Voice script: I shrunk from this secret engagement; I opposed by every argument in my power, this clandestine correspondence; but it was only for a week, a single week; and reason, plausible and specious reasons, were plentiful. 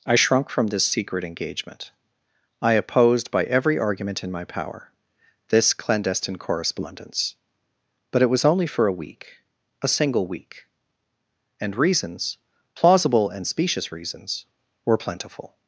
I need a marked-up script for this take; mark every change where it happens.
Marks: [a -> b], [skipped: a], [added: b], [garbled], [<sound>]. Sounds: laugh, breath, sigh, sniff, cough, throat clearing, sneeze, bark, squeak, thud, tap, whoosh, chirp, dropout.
I shrunk from this secret engagement; I opposed by every argument in my power, this clandestine correspondence; but it was only for a week, a single week; and [reason, -> reasons] plausible and specious reasons, were plentiful.